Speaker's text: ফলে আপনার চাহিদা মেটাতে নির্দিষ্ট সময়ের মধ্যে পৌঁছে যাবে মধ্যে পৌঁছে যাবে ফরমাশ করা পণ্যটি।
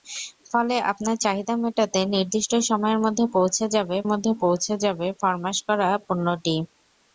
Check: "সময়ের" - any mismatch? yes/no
no